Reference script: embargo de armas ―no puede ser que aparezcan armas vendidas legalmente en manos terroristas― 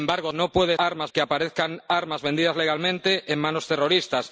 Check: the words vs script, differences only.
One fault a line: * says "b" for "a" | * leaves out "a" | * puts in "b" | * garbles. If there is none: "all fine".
* leaves out "de armas"
* says "armas" for "ser"